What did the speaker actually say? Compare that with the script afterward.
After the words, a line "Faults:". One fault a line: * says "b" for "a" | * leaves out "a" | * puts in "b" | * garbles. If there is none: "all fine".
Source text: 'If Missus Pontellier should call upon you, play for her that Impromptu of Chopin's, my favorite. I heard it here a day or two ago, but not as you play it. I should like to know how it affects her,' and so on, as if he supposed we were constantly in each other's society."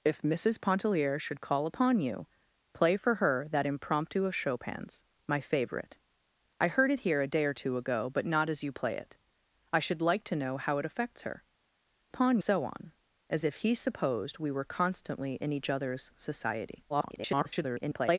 'If Missus Pontellier should call upon you, play for her that Impromptu of Chopin's, my favorite. I heard it here a day or two ago, but not as you play it. I should like to know how it affects her,' upon so on, as if he supposed we were constantly in each other's society." [garbled]
Faults:
* says "upon" for "and"
* garbles